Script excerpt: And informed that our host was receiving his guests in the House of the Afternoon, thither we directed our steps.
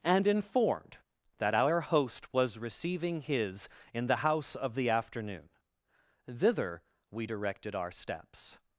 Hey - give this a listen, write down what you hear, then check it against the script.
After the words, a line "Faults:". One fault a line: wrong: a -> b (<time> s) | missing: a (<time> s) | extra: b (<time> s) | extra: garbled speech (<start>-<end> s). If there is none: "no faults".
And informed that our host was receiving his in the House of the Afternoon, thither we directed our steps.
Faults:
missing: guests (3.7 s)